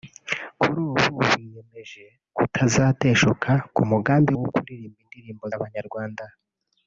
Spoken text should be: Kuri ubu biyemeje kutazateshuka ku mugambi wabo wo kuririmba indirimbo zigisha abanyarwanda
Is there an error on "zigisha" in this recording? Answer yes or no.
yes